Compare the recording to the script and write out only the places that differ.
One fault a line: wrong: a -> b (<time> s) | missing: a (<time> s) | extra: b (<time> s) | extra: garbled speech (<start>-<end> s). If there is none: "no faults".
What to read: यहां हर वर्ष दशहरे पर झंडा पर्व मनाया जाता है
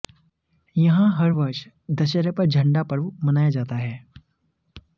no faults